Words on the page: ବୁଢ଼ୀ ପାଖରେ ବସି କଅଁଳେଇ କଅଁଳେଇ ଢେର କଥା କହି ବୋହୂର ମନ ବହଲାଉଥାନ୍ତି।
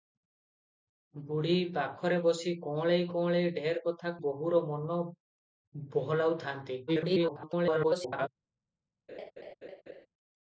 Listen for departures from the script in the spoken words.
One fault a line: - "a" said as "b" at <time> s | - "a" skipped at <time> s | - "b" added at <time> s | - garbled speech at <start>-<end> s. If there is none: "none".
- "କହି" skipped at 4.1 s
- garbled speech at 6.9-8.3 s